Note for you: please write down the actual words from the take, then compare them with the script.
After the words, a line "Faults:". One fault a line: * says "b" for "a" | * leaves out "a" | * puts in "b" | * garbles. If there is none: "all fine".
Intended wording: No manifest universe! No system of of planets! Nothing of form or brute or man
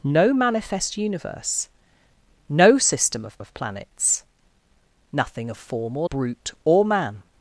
No manifest universe! No system of of planets! Nothing of form or brute or man
Faults:
all fine